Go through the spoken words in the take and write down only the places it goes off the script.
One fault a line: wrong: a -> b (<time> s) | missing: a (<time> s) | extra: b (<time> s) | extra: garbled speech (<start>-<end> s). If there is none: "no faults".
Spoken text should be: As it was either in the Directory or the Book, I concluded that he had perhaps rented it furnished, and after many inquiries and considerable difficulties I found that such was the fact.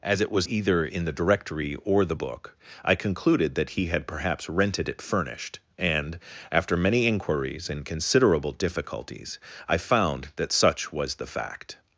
no faults